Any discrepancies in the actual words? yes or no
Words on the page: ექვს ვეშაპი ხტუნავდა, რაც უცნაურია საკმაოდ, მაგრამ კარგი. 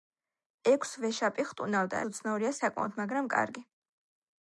yes